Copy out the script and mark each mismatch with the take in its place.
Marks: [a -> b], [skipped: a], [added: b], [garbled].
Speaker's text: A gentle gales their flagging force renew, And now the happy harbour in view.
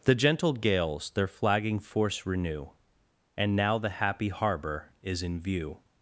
[A -> The] gentle gales their flagging force renew, And now the happy harbour [added: is] in view.